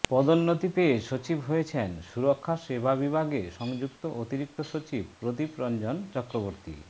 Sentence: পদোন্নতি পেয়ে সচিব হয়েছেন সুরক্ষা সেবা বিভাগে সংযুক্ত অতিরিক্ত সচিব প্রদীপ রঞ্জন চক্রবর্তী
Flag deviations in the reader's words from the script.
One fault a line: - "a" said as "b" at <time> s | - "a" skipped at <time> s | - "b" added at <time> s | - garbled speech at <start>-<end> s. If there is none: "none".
none